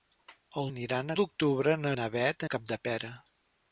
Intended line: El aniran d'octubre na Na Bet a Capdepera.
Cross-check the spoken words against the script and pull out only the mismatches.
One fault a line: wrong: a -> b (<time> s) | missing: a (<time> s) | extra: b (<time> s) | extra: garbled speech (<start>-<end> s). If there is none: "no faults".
no faults